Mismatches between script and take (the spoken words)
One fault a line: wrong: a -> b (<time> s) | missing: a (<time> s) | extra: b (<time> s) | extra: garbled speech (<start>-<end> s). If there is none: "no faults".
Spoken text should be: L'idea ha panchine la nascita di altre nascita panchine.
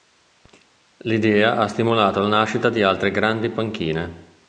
wrong: panchine -> stimolato (1.7 s)
wrong: nascita -> grandi (3.1 s)